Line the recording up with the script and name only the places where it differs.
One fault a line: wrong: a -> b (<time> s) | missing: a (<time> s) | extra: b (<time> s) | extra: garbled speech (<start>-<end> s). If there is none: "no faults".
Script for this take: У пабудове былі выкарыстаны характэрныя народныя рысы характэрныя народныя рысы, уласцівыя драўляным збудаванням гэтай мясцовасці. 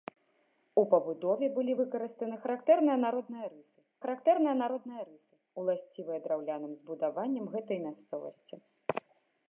no faults